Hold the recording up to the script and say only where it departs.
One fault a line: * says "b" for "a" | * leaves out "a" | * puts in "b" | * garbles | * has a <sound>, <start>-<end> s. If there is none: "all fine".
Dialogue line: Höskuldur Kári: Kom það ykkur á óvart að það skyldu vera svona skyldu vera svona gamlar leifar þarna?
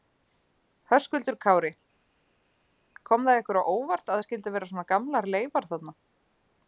* leaves out "skyldu vera svona"